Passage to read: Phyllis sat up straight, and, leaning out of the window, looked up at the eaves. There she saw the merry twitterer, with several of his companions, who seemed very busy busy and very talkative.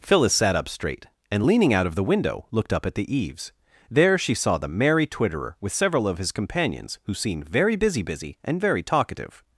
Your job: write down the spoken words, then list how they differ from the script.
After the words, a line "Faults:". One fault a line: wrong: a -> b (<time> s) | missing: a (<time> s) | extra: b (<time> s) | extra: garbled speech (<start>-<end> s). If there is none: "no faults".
Phyllis sat up straight, and, leaning out of the window, looked up at the eaves. There she saw the merry twitterer, with several of his companions, who seemed very busy busy and very talkative.
Faults:
no faults